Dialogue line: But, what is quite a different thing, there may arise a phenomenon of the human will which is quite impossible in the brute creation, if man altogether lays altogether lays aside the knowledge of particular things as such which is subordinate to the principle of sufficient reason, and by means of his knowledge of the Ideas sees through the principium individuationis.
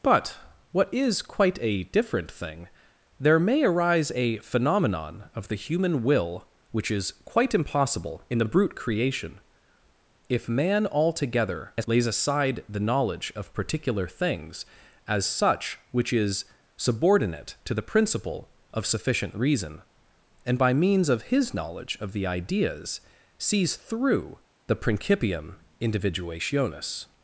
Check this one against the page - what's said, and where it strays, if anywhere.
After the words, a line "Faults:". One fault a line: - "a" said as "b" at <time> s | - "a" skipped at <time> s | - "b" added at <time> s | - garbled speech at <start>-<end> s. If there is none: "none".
But, what is quite a different thing, there may arise a phenomenon of the human will which is quite impossible in the brute creation, if man altogether lays aside the knowledge of particular things as such which is subordinate to the principle of sufficient reason, and by means of his knowledge of the Ideas sees through the principium individuationis.
Faults:
- "altogether lays" skipped at 12.1 s